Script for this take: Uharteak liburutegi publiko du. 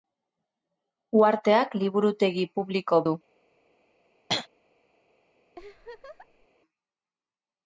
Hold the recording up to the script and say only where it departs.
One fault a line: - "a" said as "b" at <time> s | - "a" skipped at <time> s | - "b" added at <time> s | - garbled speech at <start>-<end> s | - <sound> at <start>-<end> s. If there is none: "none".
- throat clearing at 4.3-4.5 s
- laugh at 5.6-6.5 s